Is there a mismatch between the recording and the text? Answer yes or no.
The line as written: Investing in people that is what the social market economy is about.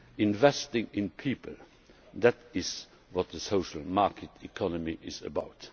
no